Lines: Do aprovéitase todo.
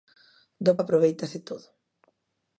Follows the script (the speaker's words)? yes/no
yes